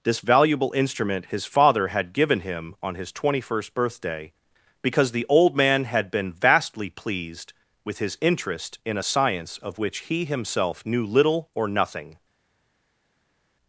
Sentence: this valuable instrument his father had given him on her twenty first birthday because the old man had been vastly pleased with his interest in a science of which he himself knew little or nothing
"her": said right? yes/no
no